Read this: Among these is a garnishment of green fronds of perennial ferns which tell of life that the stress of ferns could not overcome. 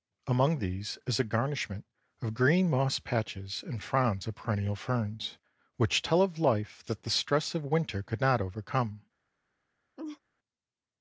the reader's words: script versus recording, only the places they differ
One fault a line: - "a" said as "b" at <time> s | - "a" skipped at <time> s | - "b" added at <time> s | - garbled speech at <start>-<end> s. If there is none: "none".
- "moss patches and" added at 2.7 s
- "ferns" said as "winter" at 7.7 s